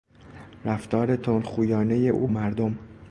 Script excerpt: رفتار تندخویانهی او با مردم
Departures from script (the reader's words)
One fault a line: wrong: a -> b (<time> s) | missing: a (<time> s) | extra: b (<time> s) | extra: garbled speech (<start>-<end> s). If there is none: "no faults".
missing: با (2.3 s)